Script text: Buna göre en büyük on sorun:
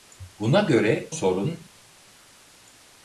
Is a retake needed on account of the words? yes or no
yes